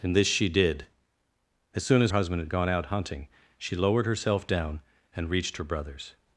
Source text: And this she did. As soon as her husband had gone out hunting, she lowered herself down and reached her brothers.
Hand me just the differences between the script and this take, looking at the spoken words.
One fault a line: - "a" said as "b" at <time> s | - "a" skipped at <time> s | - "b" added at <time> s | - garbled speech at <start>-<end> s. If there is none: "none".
- "her" skipped at 2.1 s